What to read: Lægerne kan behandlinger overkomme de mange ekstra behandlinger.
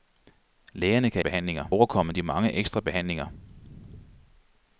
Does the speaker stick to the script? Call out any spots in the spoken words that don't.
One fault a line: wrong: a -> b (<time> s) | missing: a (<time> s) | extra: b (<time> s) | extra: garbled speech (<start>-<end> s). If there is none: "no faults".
no faults